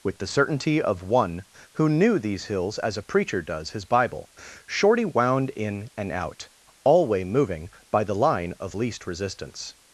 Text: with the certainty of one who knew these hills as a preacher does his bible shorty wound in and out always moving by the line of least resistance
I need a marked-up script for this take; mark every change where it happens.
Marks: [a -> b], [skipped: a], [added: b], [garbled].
with the certainty of one who knew these hills as a preacher does his bible shorty wound in and out [always -> alway] moving by the line of least resistance